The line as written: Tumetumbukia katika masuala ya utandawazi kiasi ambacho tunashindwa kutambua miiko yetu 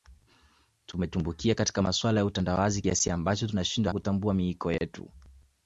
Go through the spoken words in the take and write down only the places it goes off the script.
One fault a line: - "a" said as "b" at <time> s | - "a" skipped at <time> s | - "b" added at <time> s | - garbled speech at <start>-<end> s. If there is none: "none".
none